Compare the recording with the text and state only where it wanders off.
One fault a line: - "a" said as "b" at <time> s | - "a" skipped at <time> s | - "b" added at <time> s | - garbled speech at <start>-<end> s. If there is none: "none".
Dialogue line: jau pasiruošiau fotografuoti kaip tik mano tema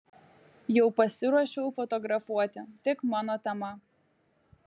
- "kaip" skipped at 2.6 s